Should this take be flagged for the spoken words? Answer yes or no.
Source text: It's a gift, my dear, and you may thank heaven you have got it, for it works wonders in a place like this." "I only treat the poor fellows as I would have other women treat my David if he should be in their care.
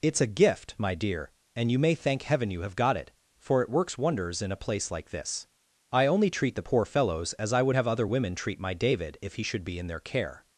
no